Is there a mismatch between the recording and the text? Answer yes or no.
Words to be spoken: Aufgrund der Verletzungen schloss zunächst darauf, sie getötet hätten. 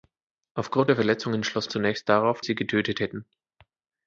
no